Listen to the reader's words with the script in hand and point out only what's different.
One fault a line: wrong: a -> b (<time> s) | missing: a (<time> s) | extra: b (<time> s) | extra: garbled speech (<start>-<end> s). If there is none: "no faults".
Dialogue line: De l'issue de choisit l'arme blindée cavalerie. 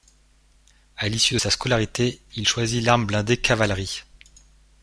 wrong: De -> À (1.0 s)
extra: sa scolarité il (1.4 s)